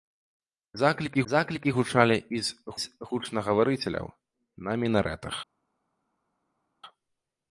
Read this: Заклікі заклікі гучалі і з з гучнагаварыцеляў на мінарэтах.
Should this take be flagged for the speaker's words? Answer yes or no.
no